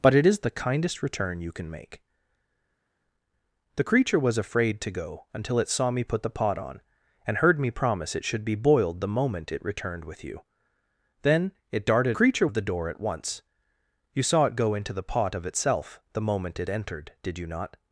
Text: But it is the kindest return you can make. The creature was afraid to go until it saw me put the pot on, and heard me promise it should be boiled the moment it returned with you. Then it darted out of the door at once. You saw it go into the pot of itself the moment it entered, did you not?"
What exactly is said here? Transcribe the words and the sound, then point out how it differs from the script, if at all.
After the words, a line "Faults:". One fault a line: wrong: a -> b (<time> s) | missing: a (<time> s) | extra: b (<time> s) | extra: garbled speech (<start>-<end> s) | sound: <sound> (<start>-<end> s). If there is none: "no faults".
But it is the kindest return you can make. The creature was afraid to go until it saw me put the pot on, and heard me promise it should be boiled the moment it returned with you. Then it darted creature of the door at once. You saw it go into the pot of itself the moment it entered, did you not?"
Faults:
wrong: out -> creature (12.1 s)